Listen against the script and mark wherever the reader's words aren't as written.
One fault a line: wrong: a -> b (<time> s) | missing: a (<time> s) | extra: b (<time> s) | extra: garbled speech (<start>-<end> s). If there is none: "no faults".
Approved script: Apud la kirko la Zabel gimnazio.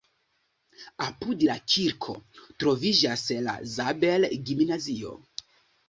extra: troviĝas (2.6 s)